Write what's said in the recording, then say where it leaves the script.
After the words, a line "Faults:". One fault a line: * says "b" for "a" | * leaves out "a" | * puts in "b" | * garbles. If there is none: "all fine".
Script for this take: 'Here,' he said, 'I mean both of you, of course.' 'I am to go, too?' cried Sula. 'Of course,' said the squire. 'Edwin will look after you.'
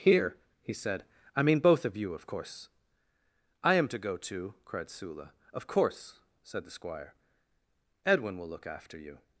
'Here,' he said, 'I mean both of you, of course.' 'I am to go, too?' cried Sula. 'Of course,' said the squire. 'Edwin will look after you.'
Faults:
all fine